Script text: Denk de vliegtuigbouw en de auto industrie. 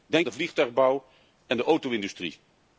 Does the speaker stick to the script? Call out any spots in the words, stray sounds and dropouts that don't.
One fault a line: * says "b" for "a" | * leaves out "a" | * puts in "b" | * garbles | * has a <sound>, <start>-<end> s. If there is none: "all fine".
all fine